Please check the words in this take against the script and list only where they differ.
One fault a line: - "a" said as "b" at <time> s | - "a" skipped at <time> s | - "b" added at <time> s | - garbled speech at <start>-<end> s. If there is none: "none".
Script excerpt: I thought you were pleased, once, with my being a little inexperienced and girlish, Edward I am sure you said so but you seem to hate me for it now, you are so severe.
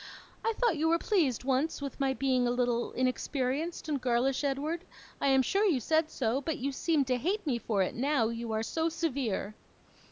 none